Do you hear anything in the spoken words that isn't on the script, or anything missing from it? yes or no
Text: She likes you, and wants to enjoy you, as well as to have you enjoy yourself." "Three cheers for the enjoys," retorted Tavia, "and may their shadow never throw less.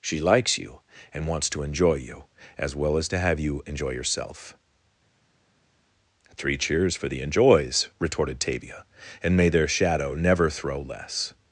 no